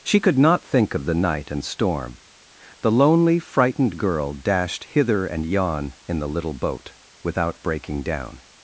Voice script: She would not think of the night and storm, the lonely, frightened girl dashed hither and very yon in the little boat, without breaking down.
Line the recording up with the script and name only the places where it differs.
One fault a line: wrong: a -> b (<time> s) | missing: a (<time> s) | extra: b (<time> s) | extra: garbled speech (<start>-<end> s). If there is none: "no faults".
wrong: would -> could (0.2 s)
missing: very (5.4 s)